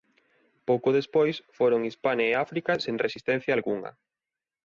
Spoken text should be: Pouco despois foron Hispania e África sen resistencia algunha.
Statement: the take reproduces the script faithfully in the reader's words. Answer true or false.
true